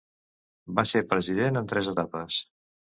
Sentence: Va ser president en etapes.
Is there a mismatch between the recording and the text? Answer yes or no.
yes